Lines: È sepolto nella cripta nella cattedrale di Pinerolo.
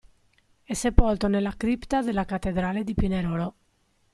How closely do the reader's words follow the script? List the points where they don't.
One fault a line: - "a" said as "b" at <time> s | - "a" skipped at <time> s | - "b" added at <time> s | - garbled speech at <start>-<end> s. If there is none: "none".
- "nella" said as "della" at 2.0 s